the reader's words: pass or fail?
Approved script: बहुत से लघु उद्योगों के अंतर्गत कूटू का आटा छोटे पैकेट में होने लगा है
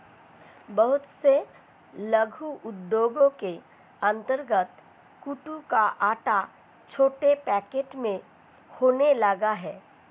pass